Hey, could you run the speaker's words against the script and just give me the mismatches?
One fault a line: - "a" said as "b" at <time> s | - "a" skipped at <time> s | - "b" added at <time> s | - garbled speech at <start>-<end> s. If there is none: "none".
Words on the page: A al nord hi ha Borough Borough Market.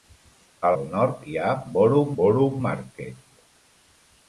none